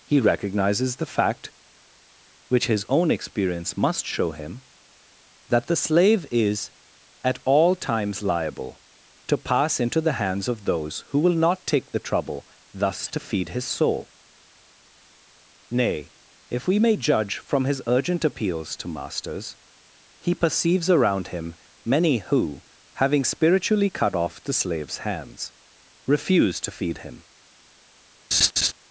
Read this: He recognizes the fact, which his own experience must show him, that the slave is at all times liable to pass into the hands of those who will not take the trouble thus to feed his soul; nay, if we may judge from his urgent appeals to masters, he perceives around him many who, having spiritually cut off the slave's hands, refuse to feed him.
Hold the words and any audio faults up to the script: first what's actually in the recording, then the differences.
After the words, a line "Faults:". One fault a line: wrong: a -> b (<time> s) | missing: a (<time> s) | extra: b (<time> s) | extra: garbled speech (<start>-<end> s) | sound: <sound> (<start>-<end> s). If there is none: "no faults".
He recognizes the fact, which his own experience must show him, that the slave is at all times liable to pass into the hands of those who will not take the trouble thus to feed his soul; nay, if we may judge from his urgent appeals to masters, he perceives around him many who, having spiritually cut off the slave's hands, refuse to feed him.
Faults:
sound: laugh (28.3-28.7 s)